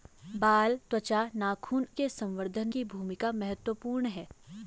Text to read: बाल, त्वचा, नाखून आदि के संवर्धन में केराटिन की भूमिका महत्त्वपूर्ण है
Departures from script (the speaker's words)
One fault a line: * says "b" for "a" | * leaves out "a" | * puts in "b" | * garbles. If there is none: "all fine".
* leaves out "आदि"
* leaves out "में केराटिन"